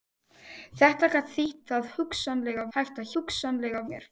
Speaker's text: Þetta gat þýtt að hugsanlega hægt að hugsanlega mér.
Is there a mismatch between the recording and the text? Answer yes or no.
no